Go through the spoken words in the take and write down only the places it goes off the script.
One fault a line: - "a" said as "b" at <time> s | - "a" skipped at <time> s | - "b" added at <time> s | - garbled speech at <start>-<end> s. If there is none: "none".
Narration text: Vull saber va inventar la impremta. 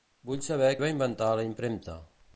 none